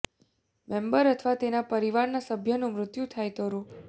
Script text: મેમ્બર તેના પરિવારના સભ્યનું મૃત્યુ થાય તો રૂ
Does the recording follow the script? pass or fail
fail